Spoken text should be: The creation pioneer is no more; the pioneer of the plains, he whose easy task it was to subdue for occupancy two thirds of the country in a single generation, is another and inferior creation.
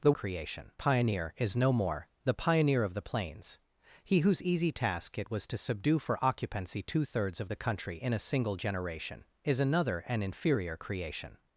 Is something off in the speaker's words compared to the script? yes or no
no